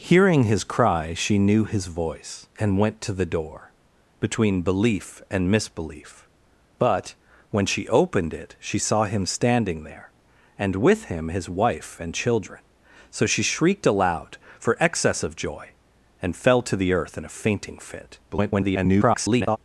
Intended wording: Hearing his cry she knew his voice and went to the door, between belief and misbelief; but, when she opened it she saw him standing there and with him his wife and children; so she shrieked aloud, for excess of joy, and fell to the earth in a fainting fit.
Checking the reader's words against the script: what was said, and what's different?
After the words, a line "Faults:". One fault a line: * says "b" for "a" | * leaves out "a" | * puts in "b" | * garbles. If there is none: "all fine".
Hearing his cry she knew his voice and went to the door, between belief and misbelief; but, when she opened it she saw him standing there and with him his wife and children; so she shrieked aloud, for excess of joy, and fell to the earth in a fainting fit. [garbled]
Faults:
* garbles